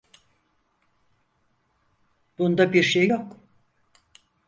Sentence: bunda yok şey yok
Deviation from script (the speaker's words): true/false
true